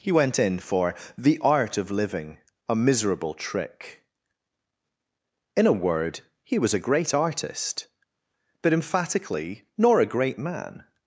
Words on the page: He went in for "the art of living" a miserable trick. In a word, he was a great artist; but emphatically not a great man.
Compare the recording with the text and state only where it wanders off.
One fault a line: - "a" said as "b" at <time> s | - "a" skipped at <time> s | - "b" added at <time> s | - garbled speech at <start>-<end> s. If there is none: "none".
- "not" said as "nor" at 9.8 s